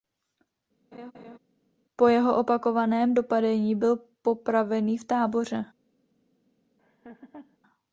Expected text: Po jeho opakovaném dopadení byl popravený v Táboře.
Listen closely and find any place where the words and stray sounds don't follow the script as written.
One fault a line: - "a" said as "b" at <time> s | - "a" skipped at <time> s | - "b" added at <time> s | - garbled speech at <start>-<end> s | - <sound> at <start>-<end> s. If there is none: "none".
- laugh at 0.9-1.4 s
- laugh at 6.8-7.6 s